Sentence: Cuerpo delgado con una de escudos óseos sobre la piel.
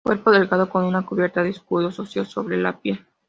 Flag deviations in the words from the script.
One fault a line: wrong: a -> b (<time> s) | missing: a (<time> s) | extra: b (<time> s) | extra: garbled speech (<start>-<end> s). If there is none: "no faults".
extra: cubierta (1.1 s)